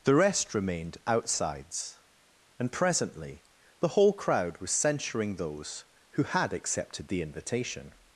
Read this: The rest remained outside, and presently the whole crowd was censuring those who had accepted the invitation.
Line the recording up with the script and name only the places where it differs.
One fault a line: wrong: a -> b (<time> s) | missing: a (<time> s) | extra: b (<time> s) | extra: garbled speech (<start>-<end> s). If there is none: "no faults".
wrong: outside -> outsides (1.1 s)